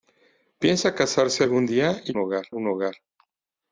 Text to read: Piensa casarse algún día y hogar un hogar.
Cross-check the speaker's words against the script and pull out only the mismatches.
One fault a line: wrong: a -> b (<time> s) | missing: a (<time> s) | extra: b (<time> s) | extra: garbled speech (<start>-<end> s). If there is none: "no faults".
no faults